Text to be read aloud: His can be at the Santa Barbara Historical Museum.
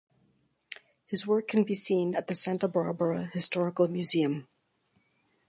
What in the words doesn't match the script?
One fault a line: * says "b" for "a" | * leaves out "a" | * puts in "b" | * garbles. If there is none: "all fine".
* puts in "work"
* puts in "seen"